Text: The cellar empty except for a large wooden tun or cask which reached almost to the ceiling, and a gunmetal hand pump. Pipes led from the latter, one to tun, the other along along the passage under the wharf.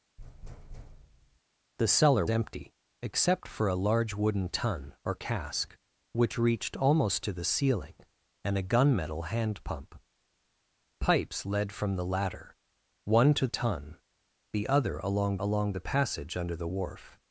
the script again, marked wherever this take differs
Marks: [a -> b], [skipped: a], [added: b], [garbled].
The cellar empty except for a large wooden tun or cask which reached almost to the ceiling, and a gunmetal hand pump. Pipes led from the latter, one to tun, the other along along the passage under the wharf.